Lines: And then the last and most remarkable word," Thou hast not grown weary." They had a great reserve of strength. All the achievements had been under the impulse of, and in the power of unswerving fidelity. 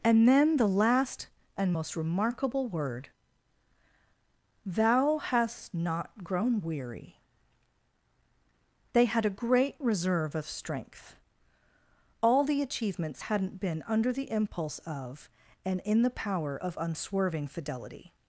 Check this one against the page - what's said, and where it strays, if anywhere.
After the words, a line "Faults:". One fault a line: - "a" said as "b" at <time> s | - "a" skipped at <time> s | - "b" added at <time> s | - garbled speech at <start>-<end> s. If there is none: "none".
And then the last and most remarkable word," Thou hast not grown weary." They had a great reserve of strength. All the achievements hadn't been under the impulse of, and in the power of unswerving fidelity.
Faults:
- "had" said as "hadn't" at 13.2 s